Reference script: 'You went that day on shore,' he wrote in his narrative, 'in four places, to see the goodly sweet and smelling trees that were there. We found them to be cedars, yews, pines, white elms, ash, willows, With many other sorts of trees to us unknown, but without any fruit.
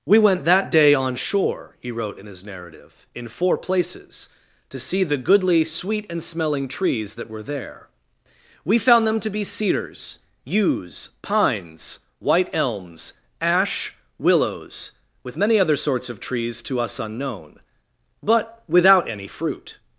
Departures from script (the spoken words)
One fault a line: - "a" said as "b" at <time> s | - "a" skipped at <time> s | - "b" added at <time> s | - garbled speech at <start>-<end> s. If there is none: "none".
- "You" said as "We" at 0.1 s